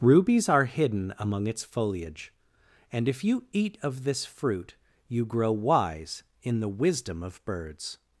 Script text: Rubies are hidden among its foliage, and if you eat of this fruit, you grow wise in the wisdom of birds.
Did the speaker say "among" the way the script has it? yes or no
yes